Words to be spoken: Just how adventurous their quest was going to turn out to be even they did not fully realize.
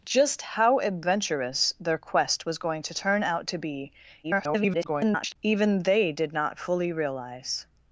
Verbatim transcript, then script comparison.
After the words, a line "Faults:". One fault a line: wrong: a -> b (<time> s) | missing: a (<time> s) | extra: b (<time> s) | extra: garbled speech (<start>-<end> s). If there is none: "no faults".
Just how adventurous their quest was going to turn out to be [garbled] even they did not fully realize.
Faults:
extra: garbled speech (4.2-5.4 s)